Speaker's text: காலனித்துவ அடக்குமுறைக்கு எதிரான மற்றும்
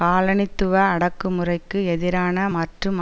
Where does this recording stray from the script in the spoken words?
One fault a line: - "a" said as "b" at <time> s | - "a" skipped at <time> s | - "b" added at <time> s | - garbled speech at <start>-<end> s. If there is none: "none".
none